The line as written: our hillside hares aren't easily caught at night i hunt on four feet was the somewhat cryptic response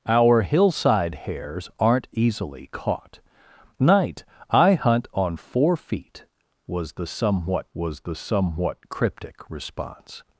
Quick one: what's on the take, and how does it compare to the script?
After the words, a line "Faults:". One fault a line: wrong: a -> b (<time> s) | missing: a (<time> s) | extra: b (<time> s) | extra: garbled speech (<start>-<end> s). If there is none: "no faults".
our hillside hares aren't easily caught night i hunt on four feet was the somewhat was the somewhat cryptic response
Faults:
missing: at (3.2 s)
extra: was the somewhat (7.7 s)